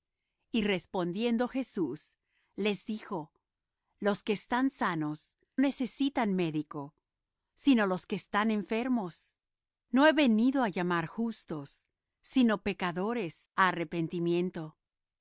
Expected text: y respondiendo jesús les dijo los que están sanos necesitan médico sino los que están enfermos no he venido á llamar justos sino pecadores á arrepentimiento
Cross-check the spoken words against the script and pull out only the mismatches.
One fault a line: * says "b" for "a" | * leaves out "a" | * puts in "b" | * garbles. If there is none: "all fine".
all fine